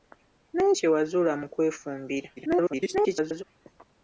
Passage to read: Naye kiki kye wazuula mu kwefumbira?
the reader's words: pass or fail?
fail